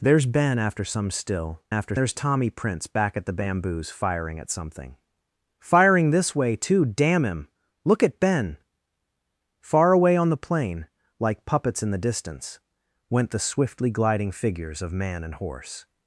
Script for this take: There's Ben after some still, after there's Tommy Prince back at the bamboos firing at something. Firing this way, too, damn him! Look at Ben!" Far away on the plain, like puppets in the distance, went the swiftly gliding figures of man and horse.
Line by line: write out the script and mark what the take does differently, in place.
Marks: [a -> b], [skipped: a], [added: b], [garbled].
There's Ben after some still, after there's Tommy Prince back at the bamboos firing at something. Firing this way, too, damn him! Look at Ben!" Far away on the plain, like puppets in the distance, went the swiftly gliding figures of man and horse.